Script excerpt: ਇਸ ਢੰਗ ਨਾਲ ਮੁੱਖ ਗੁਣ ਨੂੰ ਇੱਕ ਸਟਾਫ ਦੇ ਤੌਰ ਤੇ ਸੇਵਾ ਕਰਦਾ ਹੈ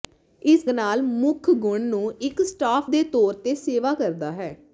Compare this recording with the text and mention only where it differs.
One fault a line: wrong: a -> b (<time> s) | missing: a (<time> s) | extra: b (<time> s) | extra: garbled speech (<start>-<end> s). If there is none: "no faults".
missing: ਢੰਗ (0.6 s)